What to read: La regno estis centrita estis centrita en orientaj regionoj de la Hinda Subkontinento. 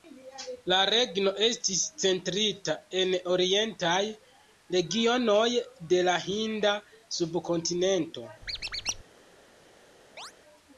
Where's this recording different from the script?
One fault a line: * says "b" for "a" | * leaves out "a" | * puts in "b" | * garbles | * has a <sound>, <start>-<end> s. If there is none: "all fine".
* leaves out "estis centrita"
* has a squeak, 8.4-9.0 s
* has a chirp, 10.2-10.3 s